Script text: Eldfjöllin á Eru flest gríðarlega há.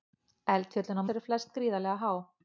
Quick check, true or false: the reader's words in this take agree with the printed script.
true